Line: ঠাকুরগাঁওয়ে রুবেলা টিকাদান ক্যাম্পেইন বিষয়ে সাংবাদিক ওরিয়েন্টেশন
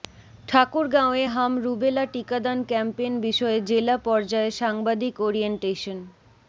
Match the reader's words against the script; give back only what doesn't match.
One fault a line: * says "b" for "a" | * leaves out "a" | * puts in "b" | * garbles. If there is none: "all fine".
* puts in "হাম"
* puts in "জেলা পর্যায়ে"